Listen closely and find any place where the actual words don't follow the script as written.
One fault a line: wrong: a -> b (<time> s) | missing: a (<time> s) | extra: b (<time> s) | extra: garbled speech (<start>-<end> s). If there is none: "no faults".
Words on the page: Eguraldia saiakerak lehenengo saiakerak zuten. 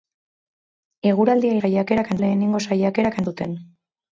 no faults